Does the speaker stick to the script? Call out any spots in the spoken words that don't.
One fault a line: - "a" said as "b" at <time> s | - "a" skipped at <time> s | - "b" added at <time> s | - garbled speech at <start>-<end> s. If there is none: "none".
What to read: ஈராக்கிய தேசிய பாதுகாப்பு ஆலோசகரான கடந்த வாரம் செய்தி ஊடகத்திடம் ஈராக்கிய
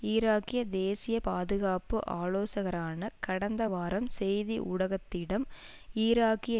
none